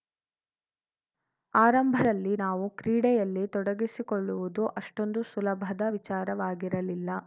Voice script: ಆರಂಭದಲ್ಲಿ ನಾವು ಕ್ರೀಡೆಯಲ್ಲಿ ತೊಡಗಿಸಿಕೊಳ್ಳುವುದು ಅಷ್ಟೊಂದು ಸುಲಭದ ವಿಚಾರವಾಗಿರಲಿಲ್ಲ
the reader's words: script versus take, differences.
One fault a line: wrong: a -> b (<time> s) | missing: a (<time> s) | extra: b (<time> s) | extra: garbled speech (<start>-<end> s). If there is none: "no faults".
no faults